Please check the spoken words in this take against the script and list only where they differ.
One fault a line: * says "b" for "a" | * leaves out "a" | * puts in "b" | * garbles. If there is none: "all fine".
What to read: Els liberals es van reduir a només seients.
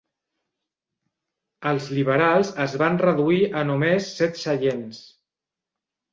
* puts in "set"